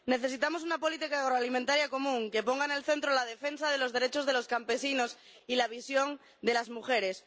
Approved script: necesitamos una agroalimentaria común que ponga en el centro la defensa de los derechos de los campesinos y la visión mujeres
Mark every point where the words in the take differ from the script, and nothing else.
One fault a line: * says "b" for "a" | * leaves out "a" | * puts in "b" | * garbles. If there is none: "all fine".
* puts in "política"
* puts in "de las"